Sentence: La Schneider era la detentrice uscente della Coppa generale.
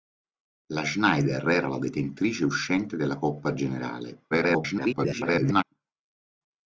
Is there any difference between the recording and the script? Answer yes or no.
yes